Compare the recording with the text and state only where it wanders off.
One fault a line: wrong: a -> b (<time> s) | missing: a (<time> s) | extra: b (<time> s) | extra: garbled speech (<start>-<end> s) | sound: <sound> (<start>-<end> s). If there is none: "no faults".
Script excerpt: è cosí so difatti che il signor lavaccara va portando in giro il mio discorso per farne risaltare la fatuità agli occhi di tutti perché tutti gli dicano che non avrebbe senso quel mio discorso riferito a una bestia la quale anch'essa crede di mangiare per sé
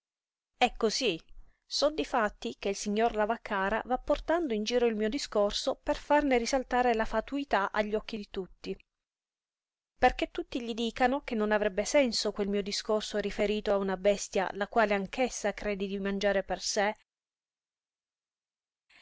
no faults